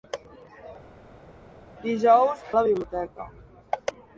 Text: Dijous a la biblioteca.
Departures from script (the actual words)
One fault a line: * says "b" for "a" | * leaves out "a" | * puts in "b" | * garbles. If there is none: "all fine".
all fine